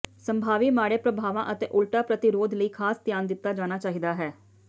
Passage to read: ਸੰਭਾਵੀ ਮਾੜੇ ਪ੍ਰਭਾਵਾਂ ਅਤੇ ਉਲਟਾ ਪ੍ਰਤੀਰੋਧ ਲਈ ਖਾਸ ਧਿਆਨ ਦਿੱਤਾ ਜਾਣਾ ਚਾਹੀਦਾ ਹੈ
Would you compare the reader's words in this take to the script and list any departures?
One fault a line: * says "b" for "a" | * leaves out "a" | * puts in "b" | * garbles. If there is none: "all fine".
all fine